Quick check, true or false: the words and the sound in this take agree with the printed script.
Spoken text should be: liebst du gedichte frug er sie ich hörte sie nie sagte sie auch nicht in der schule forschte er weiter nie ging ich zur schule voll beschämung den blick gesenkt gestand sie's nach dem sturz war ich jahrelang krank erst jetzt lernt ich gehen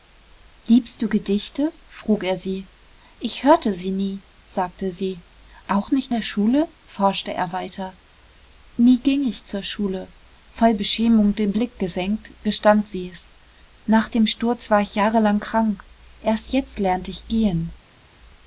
false